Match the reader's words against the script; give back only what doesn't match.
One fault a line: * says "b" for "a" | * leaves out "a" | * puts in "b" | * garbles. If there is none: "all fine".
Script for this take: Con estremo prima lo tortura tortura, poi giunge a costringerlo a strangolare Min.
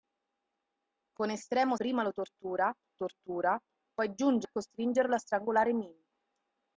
all fine